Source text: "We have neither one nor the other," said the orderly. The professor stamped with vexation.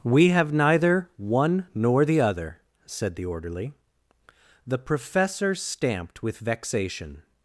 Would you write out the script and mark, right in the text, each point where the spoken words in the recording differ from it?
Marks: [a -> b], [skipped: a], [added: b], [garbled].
"We have neither one nor the other," said the orderly. The professor stamped with vexation.